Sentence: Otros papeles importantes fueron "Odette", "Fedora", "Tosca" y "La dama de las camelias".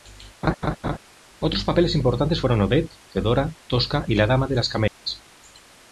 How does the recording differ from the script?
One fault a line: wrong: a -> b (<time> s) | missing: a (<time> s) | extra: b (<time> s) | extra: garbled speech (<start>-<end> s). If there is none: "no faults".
no faults